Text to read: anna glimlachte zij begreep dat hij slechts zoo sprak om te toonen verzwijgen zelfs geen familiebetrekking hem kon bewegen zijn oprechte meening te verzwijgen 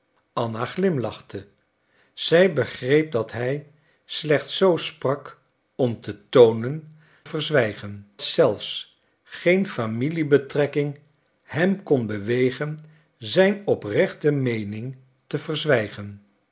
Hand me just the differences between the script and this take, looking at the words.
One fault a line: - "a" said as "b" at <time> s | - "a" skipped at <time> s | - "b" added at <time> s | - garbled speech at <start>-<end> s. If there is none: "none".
none